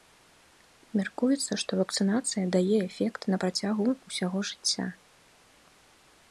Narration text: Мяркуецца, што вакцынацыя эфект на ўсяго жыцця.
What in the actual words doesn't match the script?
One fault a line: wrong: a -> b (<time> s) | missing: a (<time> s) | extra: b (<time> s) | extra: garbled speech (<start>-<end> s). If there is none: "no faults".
extra: дае (2.6 s)
extra: працягу (3.5 s)